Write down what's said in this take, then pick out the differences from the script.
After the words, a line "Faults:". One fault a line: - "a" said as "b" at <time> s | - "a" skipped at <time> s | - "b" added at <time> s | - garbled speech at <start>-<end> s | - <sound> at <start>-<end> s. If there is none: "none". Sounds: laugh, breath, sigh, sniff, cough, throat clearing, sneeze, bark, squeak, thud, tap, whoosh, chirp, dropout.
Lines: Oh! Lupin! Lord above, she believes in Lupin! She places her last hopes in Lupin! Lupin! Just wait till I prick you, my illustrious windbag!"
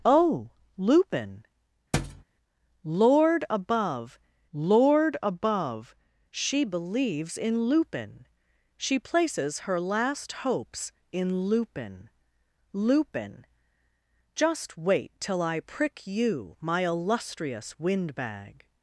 Oh! Lupin! Lord above lord above, she believes in Lupin! She places her last hopes in Lupin! Lupin! Just wait till I prick you, my illustrious windbag!"
Faults:
- thud at 1.9-2.2 s
- "lord above" added at 4.5 s